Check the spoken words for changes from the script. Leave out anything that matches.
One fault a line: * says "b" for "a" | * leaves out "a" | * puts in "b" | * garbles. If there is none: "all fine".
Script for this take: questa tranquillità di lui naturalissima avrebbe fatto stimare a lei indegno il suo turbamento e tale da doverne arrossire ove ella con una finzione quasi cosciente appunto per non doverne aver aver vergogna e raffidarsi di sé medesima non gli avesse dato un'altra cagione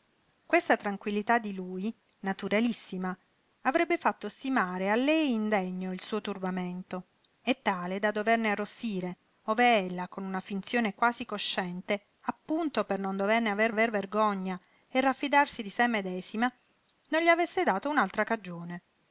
all fine